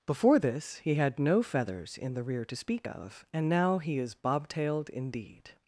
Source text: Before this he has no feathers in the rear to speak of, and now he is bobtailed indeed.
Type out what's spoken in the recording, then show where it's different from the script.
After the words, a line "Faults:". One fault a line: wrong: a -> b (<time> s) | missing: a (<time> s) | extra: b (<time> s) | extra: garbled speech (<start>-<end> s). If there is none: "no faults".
Before this he had no feathers in the rear to speak of, and now he is bobtailed indeed.
Faults:
wrong: has -> had (0.9 s)